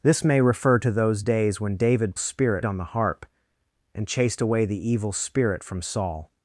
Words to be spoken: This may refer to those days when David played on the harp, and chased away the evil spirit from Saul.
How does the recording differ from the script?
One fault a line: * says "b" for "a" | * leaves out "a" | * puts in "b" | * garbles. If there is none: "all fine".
* says "spirit" for "played"